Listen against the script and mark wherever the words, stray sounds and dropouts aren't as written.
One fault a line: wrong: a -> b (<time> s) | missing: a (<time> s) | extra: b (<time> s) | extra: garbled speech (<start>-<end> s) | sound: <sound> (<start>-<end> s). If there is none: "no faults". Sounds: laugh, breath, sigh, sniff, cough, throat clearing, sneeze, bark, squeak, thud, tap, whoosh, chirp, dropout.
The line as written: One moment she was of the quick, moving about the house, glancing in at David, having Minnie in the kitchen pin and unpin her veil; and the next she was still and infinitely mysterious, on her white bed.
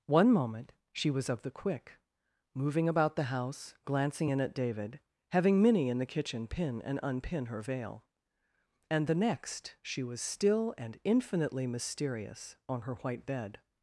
no faults